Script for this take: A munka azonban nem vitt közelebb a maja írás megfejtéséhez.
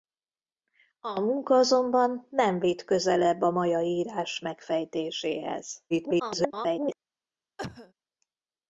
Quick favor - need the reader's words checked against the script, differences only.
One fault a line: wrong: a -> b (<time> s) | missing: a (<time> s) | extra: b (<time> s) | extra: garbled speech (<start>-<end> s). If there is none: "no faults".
extra: garbled speech (5.9-7.0 s)